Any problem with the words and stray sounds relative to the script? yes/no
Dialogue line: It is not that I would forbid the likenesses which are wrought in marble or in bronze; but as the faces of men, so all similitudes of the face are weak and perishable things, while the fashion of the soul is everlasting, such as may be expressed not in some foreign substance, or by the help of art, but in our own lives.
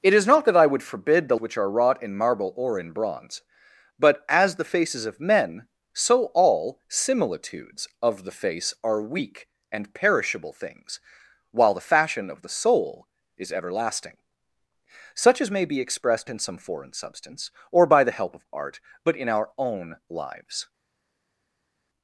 yes